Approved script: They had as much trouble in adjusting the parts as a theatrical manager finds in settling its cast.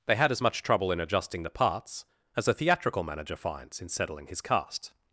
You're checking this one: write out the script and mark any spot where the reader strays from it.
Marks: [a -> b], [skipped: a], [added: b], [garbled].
They had as much trouble in adjusting the parts as a theatrical manager finds in settling [its -> his] cast.